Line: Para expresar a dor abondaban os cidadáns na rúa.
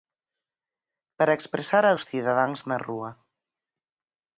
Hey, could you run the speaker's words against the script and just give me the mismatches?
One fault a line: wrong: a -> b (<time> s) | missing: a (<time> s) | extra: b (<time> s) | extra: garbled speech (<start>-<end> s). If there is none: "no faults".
missing: dor abondaban (1.9 s)